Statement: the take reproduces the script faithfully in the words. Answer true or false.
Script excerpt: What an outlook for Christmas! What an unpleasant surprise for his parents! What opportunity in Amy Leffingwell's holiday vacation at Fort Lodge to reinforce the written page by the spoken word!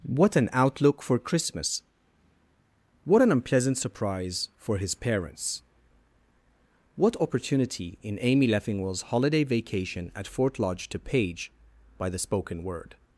false